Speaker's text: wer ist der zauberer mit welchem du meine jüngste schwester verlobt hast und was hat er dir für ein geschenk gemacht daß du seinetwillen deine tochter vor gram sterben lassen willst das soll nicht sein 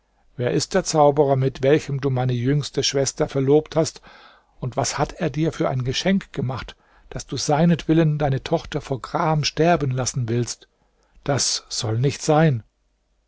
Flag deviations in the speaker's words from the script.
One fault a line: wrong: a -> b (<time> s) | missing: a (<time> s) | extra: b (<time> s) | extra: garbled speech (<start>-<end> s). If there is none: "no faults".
no faults